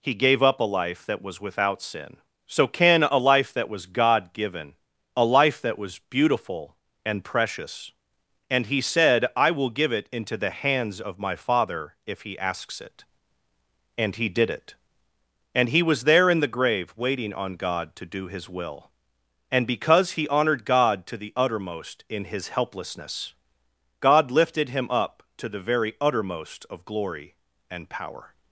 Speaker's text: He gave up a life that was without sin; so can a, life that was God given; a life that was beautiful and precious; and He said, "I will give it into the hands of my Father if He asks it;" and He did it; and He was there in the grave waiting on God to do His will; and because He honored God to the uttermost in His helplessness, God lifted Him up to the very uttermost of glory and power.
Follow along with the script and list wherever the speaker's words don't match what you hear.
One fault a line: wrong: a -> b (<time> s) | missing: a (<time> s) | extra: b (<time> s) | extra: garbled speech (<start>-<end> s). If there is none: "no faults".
no faults